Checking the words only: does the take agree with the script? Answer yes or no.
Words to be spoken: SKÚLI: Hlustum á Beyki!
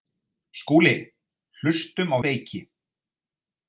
yes